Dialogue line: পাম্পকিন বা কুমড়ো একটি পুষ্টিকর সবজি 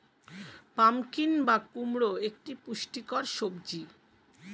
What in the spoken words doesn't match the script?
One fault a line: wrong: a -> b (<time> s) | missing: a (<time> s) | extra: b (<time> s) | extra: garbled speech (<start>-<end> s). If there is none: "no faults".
no faults